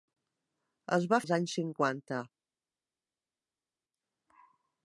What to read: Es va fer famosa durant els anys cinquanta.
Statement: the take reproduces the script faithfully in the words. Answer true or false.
false